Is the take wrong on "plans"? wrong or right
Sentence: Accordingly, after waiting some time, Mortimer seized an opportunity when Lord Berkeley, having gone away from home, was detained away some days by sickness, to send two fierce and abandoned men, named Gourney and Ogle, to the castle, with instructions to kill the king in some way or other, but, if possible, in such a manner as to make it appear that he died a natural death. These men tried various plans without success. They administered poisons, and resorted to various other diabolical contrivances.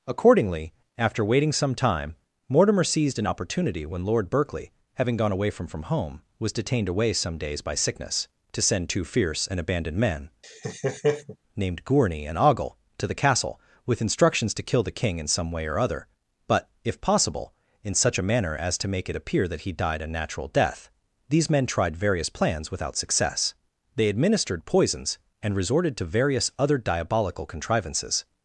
right